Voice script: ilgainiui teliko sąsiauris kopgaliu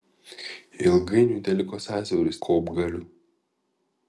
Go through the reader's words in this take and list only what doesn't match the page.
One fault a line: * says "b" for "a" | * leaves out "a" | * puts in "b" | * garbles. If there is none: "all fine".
all fine